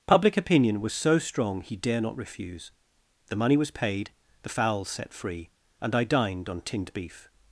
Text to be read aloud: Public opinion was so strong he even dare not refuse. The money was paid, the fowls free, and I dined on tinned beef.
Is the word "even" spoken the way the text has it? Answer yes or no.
no